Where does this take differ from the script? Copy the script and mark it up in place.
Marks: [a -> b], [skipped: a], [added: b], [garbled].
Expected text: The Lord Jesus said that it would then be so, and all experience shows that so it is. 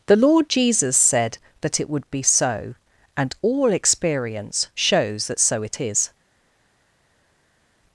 The Lord Jesus said that it would [skipped: then] be so, and all experience shows that so it is.